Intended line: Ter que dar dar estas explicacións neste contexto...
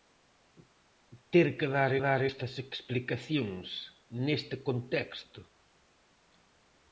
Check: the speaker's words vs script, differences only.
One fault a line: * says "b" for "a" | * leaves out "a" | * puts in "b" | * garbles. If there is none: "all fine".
all fine